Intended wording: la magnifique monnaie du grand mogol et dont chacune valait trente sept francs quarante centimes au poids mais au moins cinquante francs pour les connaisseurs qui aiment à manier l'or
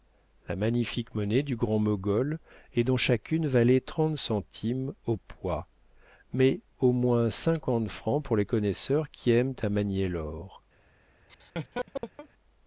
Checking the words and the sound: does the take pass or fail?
fail